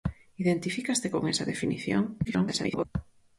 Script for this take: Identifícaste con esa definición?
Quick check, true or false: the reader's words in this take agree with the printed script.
false